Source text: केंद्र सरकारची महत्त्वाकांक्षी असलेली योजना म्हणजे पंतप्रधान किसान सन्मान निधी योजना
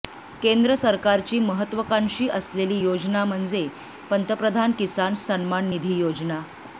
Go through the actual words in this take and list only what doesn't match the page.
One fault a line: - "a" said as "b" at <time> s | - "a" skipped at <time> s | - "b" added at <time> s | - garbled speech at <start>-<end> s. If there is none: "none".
none